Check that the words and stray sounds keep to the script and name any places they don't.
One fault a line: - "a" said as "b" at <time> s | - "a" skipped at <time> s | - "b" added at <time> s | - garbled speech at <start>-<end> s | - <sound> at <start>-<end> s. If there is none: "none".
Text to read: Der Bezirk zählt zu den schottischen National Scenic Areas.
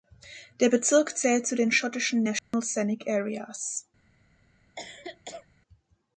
- dropout at 2.4-2.5 s
- cough at 4.8-5.5 s